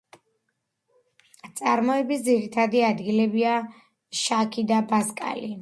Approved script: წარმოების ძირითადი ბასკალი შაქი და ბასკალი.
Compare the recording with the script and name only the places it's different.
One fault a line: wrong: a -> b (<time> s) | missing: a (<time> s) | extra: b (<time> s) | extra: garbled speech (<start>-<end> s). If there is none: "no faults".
wrong: ბასკალი -> ადგილებია (2.9 s)